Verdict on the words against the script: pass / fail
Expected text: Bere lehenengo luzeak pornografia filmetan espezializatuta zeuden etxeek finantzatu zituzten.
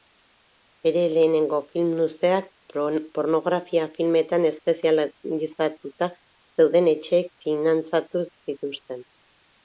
fail